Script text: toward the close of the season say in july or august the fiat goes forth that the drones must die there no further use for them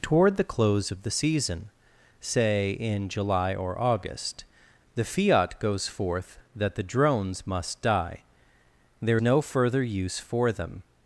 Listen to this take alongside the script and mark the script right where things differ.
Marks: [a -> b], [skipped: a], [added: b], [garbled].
toward the close of the season say in july or august the fiat goes forth that the drones must die there no further use for them